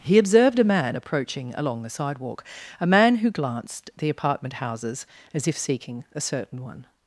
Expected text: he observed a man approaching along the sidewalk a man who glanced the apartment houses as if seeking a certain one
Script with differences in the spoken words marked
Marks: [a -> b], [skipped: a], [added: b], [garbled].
he observed a man approaching along the sidewalk a man who glanced the apartment houses as if seeking a certain one